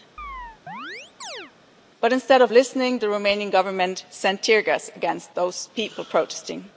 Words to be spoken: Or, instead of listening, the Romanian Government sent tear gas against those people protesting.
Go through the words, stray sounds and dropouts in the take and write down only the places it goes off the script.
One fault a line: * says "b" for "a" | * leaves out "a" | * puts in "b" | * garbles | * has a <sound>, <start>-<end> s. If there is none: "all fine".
* has a chirp, 0.2-1.5 s
* says "But" for "Or"